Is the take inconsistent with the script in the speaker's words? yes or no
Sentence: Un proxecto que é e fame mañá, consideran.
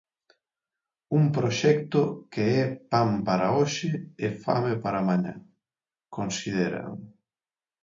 yes